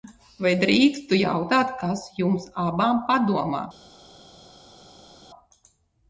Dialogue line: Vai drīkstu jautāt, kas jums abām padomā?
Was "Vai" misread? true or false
false